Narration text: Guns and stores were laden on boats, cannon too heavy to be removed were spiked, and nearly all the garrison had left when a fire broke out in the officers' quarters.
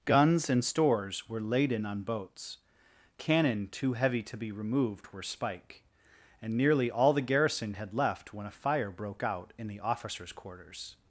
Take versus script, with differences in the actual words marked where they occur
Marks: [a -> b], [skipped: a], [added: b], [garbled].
Guns and stores were laden on boats, cannon too heavy to be removed were [spiked, -> spike] and nearly all the garrison had left when a fire broke out in the officers' quarters.